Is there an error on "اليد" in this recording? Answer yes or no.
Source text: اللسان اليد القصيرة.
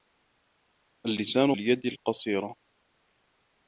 no